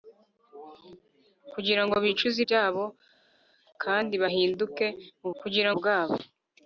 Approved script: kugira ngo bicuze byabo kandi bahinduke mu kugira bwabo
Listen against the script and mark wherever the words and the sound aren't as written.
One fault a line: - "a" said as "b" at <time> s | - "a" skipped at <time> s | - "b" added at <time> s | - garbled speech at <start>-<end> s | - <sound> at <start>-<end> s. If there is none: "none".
none